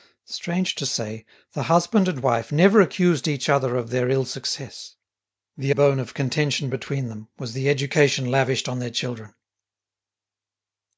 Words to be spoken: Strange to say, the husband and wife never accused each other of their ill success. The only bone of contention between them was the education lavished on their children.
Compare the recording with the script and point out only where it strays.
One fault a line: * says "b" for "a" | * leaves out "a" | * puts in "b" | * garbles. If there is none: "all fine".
* leaves out "only"